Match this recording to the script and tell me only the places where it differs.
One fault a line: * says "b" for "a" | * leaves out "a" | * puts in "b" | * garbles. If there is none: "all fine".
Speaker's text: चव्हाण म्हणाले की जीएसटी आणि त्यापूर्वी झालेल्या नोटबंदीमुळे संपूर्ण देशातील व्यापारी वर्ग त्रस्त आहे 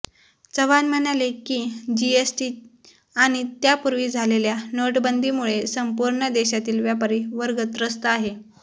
all fine